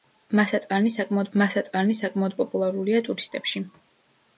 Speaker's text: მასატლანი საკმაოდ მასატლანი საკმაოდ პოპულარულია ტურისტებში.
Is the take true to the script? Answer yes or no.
yes